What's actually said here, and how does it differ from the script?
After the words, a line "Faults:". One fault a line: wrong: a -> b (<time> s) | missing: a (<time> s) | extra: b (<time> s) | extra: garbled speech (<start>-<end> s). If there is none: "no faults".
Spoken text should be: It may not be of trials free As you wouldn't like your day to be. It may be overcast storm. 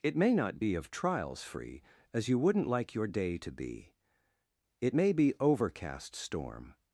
It may not be of trials free As you wouldn't like your day to be. It may be overcast storm.
Faults:
no faults